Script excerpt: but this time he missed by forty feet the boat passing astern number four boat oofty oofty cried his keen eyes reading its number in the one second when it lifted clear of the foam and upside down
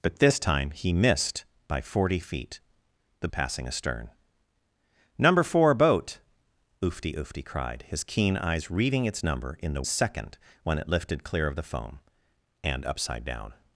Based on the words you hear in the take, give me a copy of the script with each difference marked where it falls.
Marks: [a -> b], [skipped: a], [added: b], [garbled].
but this time he missed by forty feet the [skipped: boat] passing astern number four boat oofty oofty cried his keen eyes reading its number in the [skipped: one] second when it lifted clear of the foam and upside down